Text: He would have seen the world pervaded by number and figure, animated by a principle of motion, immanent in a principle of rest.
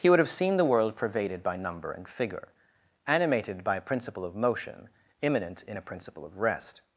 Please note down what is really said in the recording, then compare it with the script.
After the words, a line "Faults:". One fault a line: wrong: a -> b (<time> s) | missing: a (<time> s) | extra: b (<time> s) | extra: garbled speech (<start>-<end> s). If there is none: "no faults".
He would have seen the world pervaded by number and figure, animated by a principle of motion, immanent in a principle of rest.
Faults:
no faults